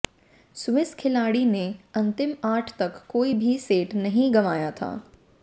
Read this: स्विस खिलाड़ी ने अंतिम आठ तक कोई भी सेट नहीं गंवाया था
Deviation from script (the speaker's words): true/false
false